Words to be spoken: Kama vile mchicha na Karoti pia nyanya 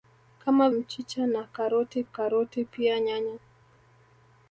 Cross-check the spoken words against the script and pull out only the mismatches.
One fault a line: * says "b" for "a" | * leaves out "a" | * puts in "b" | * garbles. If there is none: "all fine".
* leaves out "vile"
* puts in "Karoti"